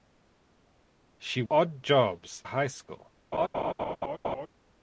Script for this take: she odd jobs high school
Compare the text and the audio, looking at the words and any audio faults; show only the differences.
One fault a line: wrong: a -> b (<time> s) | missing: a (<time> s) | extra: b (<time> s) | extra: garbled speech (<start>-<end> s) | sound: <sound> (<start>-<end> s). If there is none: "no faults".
sound: laugh (3.3-4.5 s)